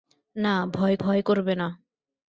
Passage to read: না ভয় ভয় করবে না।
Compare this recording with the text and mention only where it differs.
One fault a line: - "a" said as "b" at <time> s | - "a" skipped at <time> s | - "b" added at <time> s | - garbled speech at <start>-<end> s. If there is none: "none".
none